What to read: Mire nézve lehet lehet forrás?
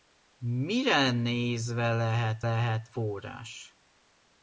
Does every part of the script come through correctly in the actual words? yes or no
yes